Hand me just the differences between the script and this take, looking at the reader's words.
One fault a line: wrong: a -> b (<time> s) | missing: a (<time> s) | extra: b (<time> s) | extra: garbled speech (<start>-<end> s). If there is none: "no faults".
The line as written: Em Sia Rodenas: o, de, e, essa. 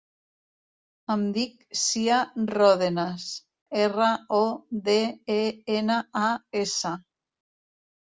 extra: dic (1.4 s)
extra: erra (3.8 s)
extra: ena a (5.8 s)